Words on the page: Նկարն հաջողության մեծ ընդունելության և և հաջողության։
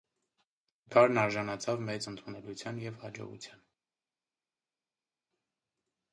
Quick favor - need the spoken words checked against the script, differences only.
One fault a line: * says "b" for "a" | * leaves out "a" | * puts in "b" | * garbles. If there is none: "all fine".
* says "արժանացավ" for "հաջողության"
* leaves out "և"